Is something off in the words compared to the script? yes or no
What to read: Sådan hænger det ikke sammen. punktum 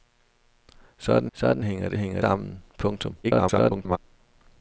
yes